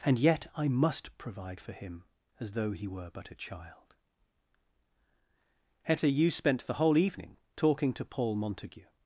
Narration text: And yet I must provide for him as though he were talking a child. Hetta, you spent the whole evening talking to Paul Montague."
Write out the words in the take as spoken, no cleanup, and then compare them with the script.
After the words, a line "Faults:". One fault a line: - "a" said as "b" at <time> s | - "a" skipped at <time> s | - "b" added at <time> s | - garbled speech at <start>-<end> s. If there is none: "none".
And yet I must provide for him as though he were but a child. Hetta, you spent the whole evening talking to Paul Montague."
Faults:
- "talking" said as "but" at 3.1 s